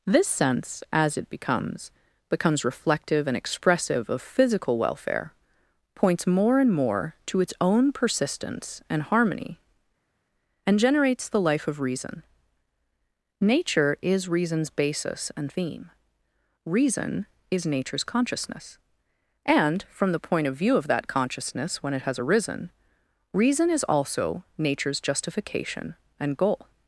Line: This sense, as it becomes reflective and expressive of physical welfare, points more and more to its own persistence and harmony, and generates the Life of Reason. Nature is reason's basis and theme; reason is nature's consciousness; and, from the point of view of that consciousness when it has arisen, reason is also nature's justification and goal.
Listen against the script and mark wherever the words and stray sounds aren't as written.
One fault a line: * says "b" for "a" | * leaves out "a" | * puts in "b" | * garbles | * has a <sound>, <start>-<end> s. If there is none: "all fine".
* puts in "becomes"